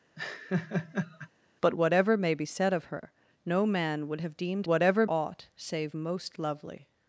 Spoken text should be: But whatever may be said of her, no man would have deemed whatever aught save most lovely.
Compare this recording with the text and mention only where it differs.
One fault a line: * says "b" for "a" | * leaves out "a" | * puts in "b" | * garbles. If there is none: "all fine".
all fine